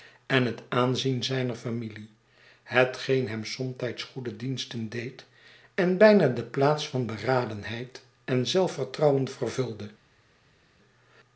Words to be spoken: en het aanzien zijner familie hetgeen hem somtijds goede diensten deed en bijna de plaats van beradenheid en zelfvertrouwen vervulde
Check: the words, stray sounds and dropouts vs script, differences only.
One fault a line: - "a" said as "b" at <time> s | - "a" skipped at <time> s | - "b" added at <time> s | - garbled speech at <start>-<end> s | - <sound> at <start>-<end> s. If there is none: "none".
none